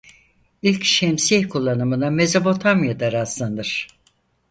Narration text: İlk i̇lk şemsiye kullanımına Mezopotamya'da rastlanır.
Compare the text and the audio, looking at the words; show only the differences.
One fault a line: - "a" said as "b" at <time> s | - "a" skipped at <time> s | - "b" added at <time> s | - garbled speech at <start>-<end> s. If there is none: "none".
- "i̇lk" skipped at 0.8 s